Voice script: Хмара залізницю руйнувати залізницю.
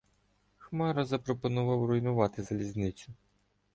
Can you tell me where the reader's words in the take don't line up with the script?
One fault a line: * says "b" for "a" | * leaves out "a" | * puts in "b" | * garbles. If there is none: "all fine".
* says "запропонував" for "залізницю"